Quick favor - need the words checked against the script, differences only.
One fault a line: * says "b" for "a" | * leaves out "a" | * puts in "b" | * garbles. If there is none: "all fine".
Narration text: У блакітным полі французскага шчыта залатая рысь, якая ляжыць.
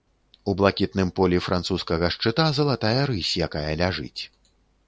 all fine